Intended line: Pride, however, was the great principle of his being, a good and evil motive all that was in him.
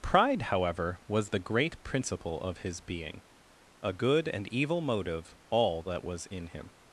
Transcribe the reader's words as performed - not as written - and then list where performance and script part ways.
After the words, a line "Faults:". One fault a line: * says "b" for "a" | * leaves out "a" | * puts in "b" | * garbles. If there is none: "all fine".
Pride, however, was the great principle of his being, a good and evil motive all that was in him.
Faults:
all fine